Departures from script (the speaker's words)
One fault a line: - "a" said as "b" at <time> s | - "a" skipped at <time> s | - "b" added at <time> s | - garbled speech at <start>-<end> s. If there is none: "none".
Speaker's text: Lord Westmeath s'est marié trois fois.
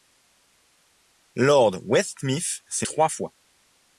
- "marié" skipped at 2.9 s